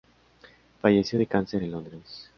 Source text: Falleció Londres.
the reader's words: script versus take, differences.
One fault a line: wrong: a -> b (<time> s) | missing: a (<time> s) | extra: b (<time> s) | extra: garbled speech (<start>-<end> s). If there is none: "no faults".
extra: de cáncer en (1.2 s)